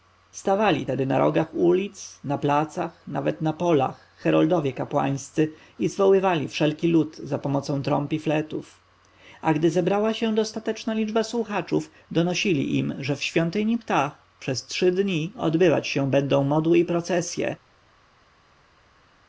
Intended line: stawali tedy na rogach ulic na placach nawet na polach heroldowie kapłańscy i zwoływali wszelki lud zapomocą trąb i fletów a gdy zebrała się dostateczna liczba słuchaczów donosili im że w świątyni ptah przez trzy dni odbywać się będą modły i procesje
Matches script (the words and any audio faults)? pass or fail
pass